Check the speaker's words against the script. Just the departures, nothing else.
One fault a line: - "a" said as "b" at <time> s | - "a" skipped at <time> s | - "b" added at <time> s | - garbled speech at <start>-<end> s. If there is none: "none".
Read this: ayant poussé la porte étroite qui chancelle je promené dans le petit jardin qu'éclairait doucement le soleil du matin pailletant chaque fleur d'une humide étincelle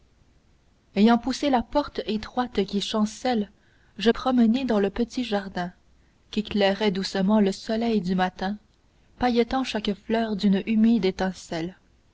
none